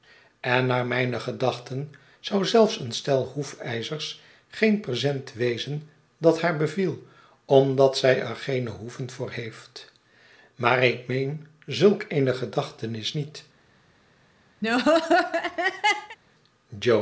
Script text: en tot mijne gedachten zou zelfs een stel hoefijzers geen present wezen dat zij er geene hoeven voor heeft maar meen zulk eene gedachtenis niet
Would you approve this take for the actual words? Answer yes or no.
no